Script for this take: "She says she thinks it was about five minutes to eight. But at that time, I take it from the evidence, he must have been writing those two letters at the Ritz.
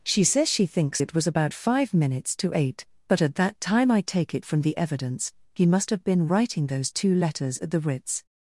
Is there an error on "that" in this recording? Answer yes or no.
no